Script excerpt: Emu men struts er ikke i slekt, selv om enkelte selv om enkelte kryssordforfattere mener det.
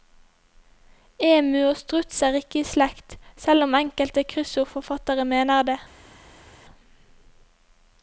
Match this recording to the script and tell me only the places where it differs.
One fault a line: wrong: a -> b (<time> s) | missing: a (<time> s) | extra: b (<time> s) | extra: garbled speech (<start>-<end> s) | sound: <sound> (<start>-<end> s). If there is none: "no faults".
wrong: men -> og (1.6 s)
missing: selv om enkelte (4.2 s)